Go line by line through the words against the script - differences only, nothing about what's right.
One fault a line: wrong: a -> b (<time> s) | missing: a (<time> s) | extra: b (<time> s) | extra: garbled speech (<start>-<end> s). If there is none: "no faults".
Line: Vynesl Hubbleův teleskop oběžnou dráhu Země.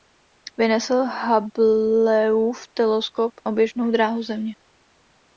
no faults